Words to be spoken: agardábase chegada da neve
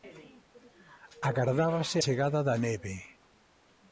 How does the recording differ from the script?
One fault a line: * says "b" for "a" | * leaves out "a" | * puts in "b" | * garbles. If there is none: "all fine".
all fine